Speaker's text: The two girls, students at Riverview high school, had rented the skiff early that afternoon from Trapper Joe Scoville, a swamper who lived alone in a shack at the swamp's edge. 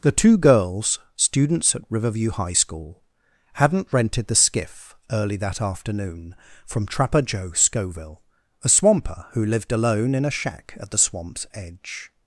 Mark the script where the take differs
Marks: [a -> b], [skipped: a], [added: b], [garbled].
The two girls, students at Riverview high school, [had -> hadn't] rented the skiff early that afternoon from Trapper Joe Scoville, a swamper who lived alone in a shack at the swamp's edge.